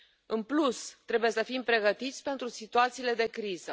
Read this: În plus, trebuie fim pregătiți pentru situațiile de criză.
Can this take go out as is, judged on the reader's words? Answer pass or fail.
fail